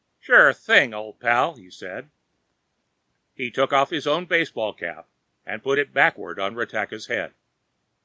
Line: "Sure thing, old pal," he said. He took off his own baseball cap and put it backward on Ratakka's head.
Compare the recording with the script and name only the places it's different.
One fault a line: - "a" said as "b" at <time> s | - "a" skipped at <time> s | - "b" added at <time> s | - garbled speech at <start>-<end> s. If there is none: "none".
none